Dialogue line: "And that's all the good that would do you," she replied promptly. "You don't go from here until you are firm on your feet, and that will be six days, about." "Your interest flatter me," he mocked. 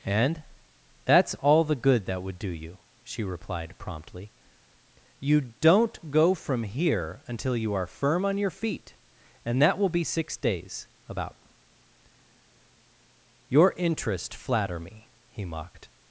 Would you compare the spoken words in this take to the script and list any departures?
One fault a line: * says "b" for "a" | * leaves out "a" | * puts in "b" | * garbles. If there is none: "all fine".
all fine